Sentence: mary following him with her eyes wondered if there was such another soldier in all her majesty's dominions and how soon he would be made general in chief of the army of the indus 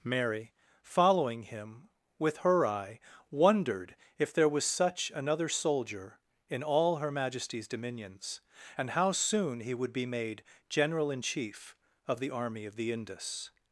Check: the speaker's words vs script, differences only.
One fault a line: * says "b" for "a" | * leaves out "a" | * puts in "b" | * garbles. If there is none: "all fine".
* says "eye" for "eyes"